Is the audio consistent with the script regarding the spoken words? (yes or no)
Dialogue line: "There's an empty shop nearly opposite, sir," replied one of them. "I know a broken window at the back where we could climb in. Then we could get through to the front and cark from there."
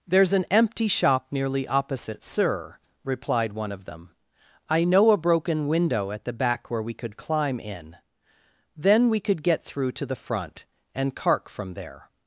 yes